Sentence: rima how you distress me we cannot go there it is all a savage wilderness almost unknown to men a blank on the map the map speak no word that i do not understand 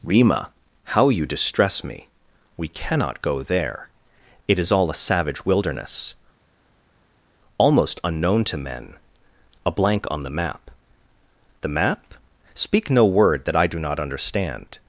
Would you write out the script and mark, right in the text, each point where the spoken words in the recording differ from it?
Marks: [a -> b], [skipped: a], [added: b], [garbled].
rima how you distress me we cannot go there it is all a savage wilderness almost unknown to men a blank on the map the map speak no word that i do not understand